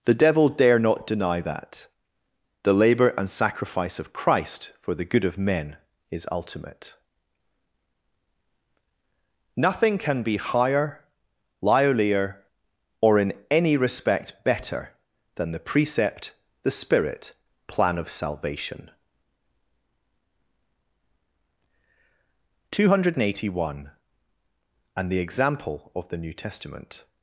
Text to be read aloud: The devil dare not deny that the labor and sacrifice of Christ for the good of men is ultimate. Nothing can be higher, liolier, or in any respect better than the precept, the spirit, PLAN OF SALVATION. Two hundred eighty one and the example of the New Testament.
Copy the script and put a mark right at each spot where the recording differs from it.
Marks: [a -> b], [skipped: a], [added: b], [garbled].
The devil dare not deny that the labor and sacrifice of Christ for the good of men is ultimate. Nothing can be higher, liolier, or in any respect better than the precept, the spirit, PLAN OF SALVATION. Two hundred eighty one and the example of the New Testament.